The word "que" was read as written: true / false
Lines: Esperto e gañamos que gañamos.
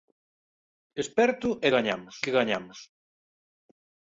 true